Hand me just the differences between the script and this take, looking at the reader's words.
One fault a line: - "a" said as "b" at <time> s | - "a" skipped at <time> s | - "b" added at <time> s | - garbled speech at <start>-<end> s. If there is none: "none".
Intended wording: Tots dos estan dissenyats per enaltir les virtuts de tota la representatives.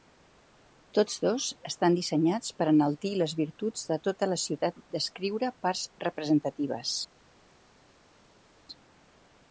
- "ciutat descriure parts" added at 4.5 s